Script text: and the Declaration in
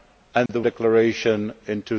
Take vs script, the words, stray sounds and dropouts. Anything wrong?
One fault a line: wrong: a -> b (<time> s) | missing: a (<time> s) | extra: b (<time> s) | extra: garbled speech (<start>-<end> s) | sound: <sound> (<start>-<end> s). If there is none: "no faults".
sound: dropout (0.5-0.5 s)